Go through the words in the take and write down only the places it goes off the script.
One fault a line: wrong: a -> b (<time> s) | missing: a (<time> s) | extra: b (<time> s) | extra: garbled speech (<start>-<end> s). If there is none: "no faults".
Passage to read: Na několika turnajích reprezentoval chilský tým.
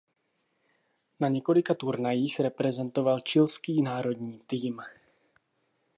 extra: národní (3.8 s)